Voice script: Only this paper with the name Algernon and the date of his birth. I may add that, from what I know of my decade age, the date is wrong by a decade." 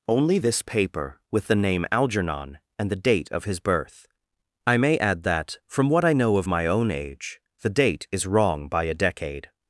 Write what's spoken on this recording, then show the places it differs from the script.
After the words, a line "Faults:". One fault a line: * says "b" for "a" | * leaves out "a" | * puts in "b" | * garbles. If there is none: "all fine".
Only this paper with the name Algernon and the date of his birth. I may add that, from what I know of my own age, the date is wrong by a decade."
Faults:
* says "own" for "decade"